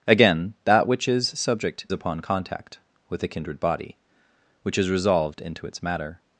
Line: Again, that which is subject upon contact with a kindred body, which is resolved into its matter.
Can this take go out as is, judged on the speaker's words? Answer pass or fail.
pass